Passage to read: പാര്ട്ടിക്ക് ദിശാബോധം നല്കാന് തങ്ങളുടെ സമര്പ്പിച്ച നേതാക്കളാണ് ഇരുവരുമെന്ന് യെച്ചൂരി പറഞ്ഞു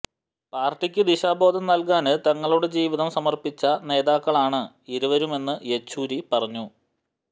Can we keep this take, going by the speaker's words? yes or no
no